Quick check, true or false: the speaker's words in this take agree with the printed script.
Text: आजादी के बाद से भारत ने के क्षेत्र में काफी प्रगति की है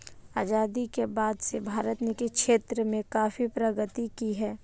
true